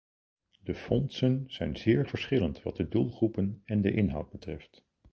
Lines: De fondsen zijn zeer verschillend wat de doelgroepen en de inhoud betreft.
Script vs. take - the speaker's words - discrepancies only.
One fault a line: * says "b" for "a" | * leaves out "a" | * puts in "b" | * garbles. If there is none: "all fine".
all fine